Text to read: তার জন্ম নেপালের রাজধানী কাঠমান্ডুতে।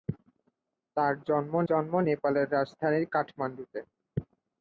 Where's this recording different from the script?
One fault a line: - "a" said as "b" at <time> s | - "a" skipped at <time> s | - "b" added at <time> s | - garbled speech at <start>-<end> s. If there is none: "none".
- "জন্ম" added at 1.7 s